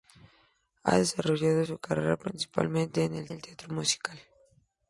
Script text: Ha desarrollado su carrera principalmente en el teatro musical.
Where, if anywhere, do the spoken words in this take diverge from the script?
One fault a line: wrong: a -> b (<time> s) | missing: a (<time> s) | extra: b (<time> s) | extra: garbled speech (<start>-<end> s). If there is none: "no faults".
extra: el (3.3 s)